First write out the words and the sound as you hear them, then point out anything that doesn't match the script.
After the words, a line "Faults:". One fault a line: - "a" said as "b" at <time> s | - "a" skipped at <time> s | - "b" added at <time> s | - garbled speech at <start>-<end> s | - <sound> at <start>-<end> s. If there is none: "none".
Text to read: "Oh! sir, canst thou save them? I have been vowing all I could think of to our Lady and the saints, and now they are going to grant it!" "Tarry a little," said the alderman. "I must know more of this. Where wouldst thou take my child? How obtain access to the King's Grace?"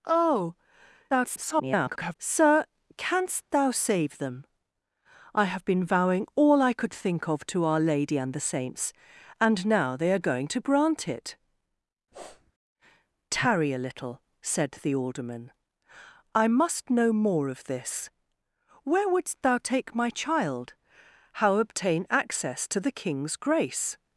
"Oh! [garbled] sir, canst thou save them? I have been vowing all I could think of to our Lady and the saints, and now they are going to grant it!" "Tarry a little," said the alderman. "I must know more of this. Where wouldst thou take my child? How obtain access to the King's Grace?"
Faults:
- garbled speech at 1.1-2.2 s
- sniff at 12.1-12.5 s